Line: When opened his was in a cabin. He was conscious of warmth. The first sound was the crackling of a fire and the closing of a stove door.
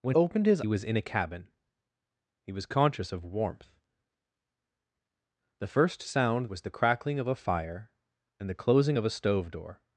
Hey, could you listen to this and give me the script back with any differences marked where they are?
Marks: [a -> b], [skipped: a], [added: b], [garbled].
When opened his was in a cabin. He was conscious of warmth. The first sound was the crackling of a fire and the closing of a stove door.